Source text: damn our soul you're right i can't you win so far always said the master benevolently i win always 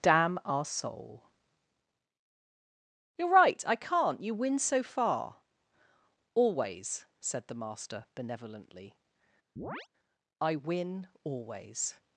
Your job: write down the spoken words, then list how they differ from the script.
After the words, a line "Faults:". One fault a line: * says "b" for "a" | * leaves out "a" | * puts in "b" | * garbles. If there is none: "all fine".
damn our soul you're right i can't you win so far always said the master benevolently i win always
Faults:
all fine